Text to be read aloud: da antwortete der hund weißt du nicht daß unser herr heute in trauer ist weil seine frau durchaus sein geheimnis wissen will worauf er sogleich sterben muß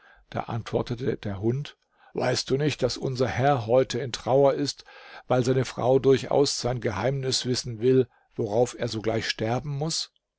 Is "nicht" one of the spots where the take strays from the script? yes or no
no